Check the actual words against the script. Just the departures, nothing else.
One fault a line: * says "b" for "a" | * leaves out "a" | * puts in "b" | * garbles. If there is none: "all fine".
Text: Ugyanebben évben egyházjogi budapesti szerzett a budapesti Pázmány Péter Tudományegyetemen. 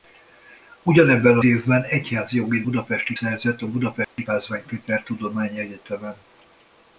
all fine